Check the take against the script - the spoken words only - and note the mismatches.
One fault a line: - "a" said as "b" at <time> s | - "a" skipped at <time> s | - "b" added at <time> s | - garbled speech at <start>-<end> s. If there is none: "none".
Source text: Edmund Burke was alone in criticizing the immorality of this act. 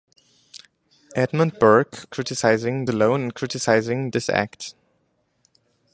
- "was" said as "criticizing" at 2.1 s
- "the immorality of" skipped at 4.1 s